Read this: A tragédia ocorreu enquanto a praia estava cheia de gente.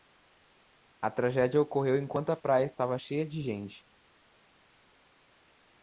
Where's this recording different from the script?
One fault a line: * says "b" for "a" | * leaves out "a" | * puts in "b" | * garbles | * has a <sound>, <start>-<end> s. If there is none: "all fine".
all fine